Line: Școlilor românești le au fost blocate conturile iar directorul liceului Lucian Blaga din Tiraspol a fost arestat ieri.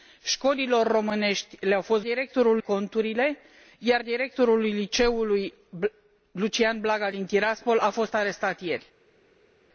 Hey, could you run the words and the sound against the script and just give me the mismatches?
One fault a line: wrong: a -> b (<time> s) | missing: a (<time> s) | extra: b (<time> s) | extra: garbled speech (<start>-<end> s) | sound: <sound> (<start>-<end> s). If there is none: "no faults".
wrong: blocate -> directorul (2.0 s)